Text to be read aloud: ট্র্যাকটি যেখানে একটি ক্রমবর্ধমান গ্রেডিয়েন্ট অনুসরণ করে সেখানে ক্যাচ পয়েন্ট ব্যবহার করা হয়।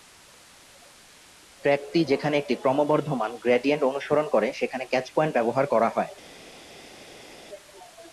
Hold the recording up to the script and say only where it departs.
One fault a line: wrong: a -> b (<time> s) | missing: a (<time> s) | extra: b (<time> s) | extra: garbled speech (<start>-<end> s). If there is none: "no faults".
no faults